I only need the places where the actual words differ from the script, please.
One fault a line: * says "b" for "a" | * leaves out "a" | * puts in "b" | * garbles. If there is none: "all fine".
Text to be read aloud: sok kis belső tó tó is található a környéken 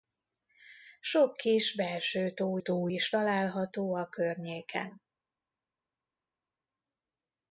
all fine